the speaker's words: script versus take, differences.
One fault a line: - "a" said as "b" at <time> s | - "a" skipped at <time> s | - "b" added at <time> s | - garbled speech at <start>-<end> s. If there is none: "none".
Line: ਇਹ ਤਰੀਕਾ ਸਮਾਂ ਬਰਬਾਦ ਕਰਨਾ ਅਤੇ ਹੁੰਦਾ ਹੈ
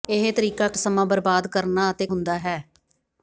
none